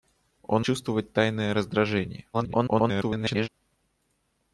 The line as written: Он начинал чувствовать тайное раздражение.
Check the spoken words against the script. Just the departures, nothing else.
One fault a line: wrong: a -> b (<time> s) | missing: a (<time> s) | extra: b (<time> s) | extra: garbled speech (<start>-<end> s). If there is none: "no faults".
missing: начинал (0.7 s)
extra: garbled speech (2.3-3.5 s)